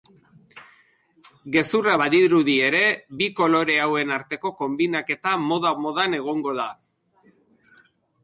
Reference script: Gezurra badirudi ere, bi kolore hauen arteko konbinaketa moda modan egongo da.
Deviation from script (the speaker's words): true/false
false